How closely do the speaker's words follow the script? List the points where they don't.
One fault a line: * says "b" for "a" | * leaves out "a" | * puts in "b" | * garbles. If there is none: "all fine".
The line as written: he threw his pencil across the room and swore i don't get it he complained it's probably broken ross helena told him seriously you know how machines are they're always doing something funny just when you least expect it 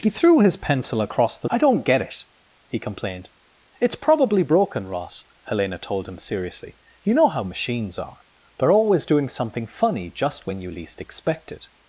* leaves out "room and swore"